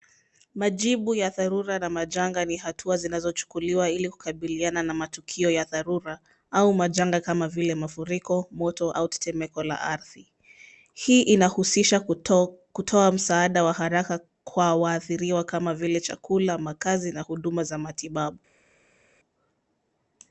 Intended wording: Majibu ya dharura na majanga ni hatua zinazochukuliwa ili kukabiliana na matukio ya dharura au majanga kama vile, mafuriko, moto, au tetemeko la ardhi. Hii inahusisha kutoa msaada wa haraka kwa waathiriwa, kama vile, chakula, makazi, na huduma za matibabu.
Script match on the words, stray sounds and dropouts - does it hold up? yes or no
yes